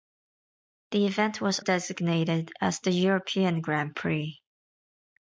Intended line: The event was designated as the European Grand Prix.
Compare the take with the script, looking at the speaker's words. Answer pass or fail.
pass